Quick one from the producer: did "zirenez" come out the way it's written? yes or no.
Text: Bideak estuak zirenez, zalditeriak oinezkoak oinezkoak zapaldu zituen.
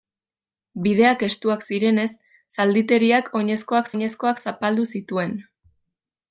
yes